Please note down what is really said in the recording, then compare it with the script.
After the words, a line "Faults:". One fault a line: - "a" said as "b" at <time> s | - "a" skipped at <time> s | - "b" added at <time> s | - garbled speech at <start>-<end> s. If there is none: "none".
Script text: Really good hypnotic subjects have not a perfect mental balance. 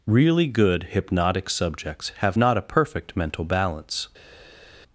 Really good hypnotic subjects have not a perfect mental balance.
Faults:
none